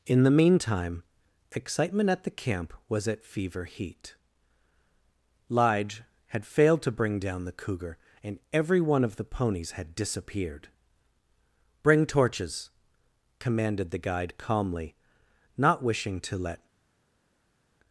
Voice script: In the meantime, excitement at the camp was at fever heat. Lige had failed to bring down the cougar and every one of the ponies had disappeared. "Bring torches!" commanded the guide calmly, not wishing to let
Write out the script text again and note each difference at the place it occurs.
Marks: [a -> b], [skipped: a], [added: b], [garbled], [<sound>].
In the meantime, excitement at the camp was at fever heat. Lige had failed to bring down the cougar and every one of the ponies had disappeared. "Bring torches!" commanded the guide calmly, not wishing to let